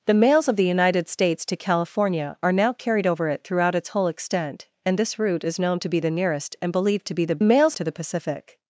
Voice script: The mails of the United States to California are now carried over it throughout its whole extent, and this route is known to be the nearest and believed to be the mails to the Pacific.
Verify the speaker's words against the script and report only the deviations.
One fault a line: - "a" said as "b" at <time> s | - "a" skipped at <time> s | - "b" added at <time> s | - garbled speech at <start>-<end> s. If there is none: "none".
none